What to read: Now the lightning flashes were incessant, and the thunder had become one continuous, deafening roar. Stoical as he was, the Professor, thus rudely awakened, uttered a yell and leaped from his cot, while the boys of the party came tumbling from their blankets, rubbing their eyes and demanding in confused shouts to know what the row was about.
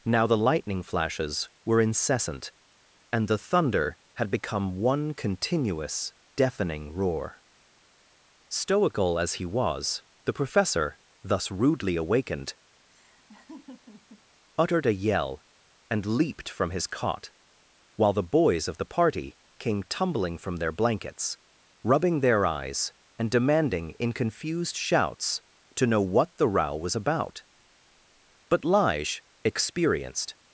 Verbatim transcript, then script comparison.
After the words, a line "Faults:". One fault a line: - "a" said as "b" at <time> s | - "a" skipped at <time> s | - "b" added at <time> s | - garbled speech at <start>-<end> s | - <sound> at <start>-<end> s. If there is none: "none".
Now the lightning flashes were incessant, and the thunder had become one continuous, deafening roar. Stoical as he was, the Professor, thus rudely awakened, uttered a yell and leaped from his cot, while the boys of the party came tumbling from their blankets, rubbing their eyes and demanding in confused shouts to know what the row was about. But Lige, experienced
Faults:
- laugh at 12.9-14.2 s
- "But Lige experienced" added at 28.5 s